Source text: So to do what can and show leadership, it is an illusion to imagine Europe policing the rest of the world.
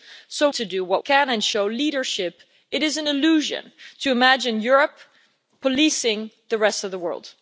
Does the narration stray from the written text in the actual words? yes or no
no